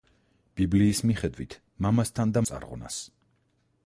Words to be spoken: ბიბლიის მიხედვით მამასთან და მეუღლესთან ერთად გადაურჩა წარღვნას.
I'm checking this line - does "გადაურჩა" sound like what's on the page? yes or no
no